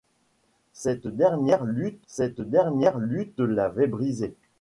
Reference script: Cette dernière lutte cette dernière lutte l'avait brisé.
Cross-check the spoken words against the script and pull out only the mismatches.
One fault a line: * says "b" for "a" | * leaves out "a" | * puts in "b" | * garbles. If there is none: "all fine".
all fine